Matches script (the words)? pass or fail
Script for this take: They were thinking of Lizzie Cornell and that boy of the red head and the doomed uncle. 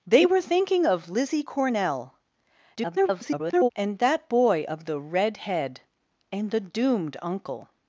fail